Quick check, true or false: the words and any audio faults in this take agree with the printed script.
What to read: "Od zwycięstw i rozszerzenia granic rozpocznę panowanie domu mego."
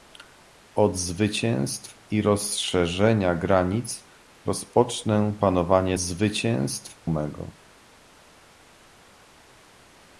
false